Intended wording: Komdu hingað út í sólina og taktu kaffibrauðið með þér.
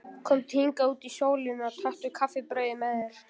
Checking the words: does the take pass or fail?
pass